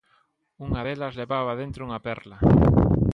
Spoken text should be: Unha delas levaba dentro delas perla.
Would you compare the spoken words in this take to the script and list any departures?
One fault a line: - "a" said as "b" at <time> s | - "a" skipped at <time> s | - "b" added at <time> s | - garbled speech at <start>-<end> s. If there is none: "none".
- "delas" said as "unha" at 1.9 s